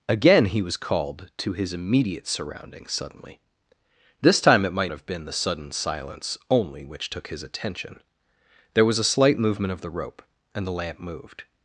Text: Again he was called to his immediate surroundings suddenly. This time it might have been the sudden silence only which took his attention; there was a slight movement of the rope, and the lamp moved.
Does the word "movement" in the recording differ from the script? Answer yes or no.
no